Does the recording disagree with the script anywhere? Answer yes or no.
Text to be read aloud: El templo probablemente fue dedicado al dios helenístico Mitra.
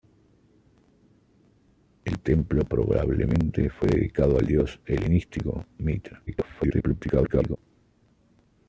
yes